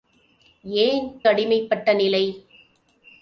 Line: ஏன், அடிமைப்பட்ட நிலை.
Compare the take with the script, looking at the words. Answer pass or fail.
pass